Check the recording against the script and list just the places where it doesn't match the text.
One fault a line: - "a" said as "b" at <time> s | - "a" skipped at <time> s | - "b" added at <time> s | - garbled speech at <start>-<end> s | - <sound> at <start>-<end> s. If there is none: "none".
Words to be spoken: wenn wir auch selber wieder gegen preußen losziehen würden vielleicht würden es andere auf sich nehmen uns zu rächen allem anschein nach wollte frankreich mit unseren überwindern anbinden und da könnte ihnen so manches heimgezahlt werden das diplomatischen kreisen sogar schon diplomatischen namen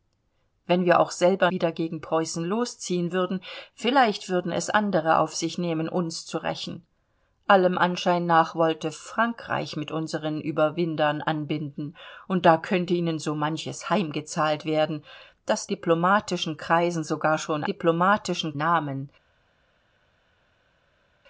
none